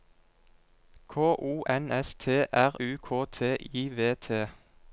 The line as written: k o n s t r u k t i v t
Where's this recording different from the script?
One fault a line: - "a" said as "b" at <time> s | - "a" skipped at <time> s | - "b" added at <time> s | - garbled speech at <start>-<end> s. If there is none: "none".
none